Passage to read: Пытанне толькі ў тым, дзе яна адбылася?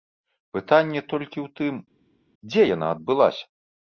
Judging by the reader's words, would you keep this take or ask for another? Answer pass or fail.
pass